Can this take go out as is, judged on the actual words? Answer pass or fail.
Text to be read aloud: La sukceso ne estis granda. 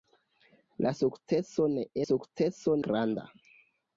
fail